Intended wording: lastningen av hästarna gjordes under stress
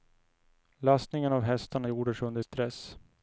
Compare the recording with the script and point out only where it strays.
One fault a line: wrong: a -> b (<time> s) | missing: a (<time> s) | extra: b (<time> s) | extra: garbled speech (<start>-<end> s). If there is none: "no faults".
no faults